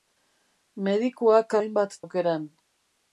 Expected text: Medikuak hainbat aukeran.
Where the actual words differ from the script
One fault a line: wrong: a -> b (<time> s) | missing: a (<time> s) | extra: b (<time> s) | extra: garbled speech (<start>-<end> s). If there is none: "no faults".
no faults